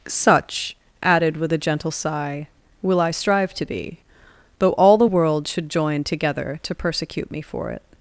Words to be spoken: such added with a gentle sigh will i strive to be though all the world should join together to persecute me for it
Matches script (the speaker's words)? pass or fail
pass